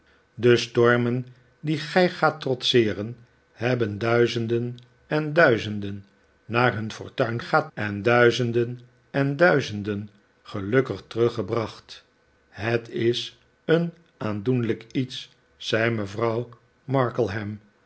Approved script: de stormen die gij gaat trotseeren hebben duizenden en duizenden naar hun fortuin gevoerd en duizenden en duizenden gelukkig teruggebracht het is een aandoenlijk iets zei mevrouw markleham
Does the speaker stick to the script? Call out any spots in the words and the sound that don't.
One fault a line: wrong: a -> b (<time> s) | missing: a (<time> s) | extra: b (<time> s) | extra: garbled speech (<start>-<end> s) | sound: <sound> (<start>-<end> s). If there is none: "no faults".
wrong: gevoerd -> gaat (7.4 s)